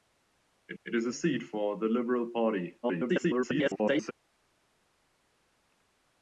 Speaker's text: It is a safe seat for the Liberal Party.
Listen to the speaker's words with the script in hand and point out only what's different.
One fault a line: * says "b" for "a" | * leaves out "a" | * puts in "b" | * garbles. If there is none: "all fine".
* puts in "it"
* leaves out "safe"
* garbles